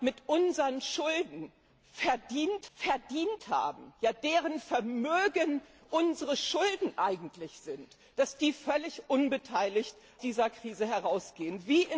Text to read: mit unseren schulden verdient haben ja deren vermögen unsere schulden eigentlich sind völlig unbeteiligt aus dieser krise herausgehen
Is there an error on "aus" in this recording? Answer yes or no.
yes